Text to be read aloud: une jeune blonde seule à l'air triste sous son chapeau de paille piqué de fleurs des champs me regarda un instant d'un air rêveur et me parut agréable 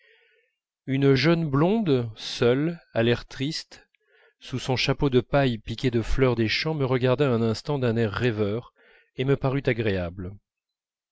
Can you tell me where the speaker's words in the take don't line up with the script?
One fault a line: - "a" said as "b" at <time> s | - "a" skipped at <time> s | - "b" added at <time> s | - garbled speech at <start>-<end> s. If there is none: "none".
none